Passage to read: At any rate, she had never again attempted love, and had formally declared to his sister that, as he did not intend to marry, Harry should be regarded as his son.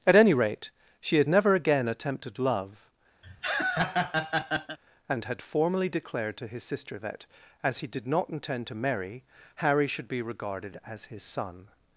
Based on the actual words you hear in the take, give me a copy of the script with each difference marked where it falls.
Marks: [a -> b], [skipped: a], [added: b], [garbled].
At any rate, she had never again attempted love, and had formally declared to his sister that, as he did not intend to marry, Harry should be regarded as his son.